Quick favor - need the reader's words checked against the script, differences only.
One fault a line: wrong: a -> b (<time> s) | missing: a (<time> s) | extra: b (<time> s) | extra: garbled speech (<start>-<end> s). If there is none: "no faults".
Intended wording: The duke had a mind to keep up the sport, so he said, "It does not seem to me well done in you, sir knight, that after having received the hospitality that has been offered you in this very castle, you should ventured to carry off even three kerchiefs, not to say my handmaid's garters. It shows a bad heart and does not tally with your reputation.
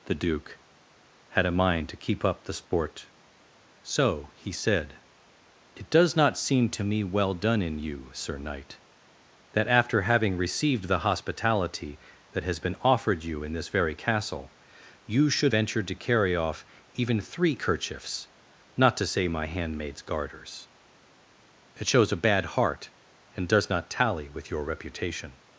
no faults